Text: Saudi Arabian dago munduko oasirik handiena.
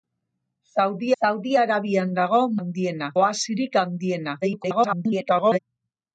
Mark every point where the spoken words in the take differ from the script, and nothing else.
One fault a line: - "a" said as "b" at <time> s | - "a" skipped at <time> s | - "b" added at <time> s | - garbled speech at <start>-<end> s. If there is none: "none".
- "saudi" added at 1.2 s
- "munduko" said as "handiena" at 2.6 s
- garbled speech at 4.4-5.6 s